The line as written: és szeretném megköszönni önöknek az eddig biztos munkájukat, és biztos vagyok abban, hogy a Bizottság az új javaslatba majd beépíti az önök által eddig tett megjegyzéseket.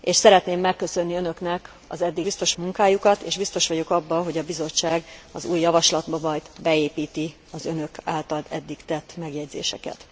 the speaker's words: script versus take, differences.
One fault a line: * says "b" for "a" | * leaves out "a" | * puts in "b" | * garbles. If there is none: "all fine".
all fine